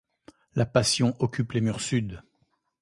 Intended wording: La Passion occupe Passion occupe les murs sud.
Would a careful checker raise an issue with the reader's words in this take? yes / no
yes